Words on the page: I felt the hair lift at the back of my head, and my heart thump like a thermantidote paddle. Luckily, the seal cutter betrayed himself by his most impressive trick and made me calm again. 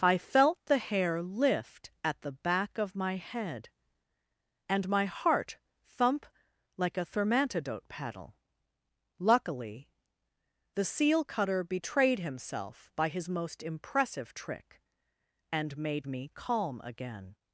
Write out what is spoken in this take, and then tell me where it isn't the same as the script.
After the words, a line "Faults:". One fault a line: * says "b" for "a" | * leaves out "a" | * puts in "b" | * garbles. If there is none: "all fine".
I felt the hair lift at the back of my head, and my heart thump like a thermantidote paddle. Luckily, the seal cutter betrayed himself by his most impressive trick and made me calm again.
Faults:
all fine